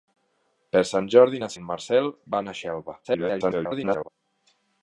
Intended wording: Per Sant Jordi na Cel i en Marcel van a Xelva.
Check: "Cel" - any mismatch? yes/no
yes